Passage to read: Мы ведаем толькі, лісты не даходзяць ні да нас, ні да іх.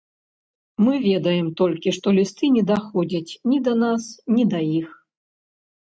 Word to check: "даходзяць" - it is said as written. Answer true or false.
true